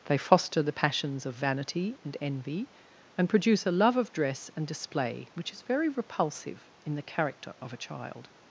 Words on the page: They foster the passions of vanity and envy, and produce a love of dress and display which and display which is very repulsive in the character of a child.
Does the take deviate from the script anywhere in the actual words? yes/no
yes